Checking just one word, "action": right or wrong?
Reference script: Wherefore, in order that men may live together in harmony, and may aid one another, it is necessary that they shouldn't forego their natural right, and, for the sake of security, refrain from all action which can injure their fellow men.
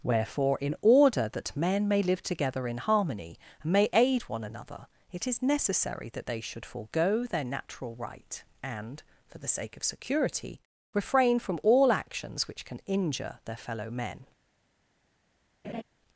wrong